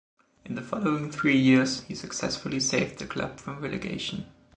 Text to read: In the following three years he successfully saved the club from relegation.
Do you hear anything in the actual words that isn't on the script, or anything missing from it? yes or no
no